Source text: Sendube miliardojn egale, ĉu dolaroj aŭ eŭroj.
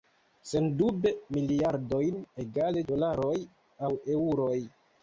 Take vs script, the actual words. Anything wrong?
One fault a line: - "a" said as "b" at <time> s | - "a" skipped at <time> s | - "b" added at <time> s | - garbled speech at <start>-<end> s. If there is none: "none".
- "ĉu" skipped at 2.9 s